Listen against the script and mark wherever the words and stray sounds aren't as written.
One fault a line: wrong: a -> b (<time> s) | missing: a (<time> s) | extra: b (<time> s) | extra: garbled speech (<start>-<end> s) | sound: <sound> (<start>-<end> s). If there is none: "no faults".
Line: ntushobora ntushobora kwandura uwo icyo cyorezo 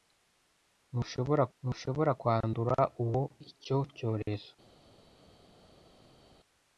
no faults